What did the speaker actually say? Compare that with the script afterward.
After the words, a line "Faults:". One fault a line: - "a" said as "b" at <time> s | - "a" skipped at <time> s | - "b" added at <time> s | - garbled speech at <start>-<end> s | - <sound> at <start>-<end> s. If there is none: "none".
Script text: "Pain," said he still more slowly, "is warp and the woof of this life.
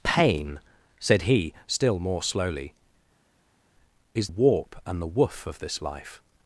"Pain," said he still more slowly, "is warp and the woof of this life.
Faults:
none